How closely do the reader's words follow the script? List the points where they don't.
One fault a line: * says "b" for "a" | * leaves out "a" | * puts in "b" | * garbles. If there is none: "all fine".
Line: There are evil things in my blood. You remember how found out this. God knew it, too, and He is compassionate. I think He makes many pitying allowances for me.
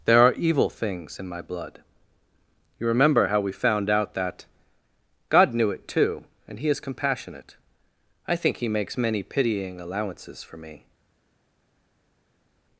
* puts in "we"
* says "that" for "this"